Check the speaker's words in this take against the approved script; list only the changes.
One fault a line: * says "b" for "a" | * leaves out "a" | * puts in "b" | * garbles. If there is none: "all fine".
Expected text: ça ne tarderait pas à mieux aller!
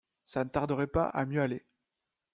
all fine